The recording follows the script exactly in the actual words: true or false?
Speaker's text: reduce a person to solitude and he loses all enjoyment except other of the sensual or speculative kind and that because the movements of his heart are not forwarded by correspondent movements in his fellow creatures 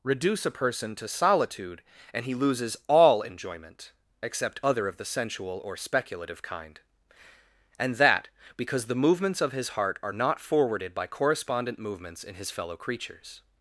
true